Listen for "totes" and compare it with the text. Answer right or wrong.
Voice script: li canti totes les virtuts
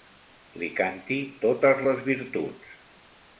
right